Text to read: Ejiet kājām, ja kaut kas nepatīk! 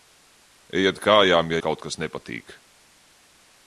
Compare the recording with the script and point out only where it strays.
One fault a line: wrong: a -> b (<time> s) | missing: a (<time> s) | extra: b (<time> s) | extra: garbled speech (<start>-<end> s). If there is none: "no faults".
no faults